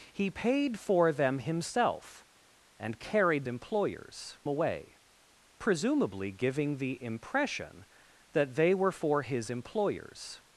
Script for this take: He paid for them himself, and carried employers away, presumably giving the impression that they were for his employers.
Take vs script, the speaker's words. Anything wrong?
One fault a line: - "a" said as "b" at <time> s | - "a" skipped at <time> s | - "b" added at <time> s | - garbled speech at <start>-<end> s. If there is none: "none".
none